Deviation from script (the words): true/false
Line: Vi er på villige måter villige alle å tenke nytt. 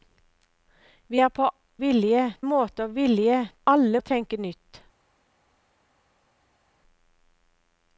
false